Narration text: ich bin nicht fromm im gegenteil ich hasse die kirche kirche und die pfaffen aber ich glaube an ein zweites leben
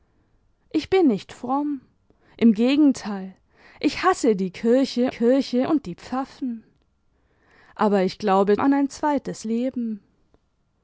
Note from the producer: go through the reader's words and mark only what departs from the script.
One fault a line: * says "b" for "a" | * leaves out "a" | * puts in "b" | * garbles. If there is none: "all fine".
all fine